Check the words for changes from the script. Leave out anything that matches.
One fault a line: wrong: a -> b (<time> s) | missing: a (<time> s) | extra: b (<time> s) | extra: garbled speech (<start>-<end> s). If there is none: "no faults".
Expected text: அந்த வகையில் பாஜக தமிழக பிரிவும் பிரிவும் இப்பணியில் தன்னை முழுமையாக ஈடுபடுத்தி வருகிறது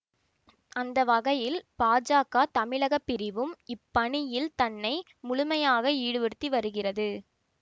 missing: பிரிவும் (3.5 s)